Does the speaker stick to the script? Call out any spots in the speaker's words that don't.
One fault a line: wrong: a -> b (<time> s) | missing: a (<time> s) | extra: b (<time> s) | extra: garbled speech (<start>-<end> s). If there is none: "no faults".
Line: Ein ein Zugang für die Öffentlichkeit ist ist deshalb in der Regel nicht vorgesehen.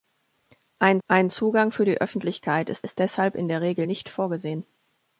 no faults